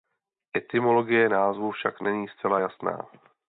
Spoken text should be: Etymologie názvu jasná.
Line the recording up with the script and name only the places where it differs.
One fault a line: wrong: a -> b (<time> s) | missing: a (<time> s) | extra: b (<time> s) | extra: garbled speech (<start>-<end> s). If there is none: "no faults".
extra: však není zcela (1.7 s)